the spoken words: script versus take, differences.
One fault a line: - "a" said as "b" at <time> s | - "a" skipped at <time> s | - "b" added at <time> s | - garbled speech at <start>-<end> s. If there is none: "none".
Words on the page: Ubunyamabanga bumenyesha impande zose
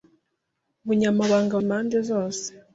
- "bumenyesha" skipped at 1.5 s